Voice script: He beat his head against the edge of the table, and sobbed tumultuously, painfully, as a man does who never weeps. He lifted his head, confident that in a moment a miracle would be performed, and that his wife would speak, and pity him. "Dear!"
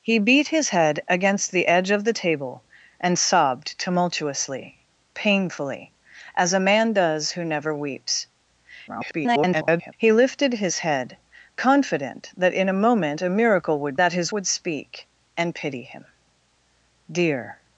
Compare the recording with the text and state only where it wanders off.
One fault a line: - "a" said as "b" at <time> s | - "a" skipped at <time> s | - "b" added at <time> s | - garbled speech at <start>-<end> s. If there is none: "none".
- garbled speech at 8.9-9.9 s
- "be performed and" skipped at 14.0 s
- "wife" skipped at 14.3 s